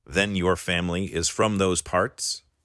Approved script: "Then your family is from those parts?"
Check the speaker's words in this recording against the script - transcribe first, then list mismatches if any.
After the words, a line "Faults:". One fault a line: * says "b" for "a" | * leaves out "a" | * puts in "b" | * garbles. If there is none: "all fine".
"Then your family is from those parts?"
Faults:
all fine